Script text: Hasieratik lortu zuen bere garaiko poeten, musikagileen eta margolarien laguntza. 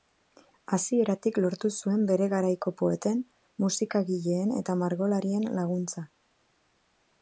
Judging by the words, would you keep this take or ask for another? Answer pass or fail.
pass